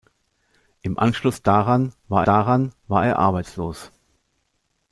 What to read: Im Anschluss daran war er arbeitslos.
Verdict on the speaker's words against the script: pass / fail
fail